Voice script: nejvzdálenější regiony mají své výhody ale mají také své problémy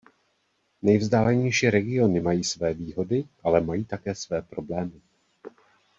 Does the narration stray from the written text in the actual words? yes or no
no